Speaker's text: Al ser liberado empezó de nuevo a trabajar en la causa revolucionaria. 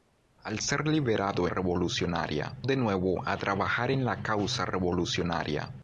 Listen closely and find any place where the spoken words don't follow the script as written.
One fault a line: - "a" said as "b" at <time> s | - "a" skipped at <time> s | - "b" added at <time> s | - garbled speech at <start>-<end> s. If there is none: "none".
- "empezó" said as "revolucionaria" at 1.5 s